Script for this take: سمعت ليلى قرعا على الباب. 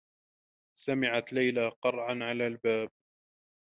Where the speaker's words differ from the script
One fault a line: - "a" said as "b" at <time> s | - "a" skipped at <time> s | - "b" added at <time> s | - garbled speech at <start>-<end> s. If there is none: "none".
none